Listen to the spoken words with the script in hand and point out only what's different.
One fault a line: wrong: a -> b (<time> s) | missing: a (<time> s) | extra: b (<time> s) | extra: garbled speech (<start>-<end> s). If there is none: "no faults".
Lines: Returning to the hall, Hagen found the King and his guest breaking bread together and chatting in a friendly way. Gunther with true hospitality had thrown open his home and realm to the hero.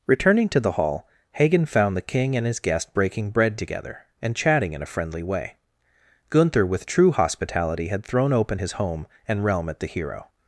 wrong: to -> at (9.7 s)